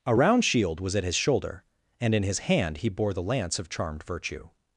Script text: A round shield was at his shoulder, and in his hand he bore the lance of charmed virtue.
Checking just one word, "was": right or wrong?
right